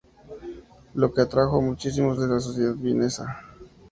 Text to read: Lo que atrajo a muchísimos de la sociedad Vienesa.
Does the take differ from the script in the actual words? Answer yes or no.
no